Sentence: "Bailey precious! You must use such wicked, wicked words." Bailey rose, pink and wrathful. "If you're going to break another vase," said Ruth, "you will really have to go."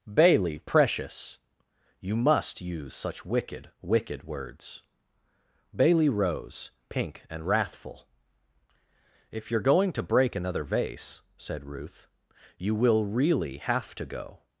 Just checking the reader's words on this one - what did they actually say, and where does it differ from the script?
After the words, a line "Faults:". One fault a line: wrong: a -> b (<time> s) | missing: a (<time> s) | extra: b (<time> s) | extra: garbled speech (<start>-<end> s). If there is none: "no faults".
"Bailey precious! You must use such wicked, wicked words." Bailey rose, pink and wrathful. "If you're going to break another vase," said Ruth, "you will really have to go."
Faults:
no faults